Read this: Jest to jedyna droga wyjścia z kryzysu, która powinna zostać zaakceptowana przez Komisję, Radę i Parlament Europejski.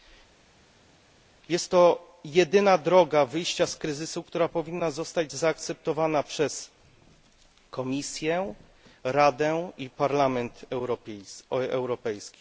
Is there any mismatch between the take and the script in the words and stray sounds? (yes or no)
no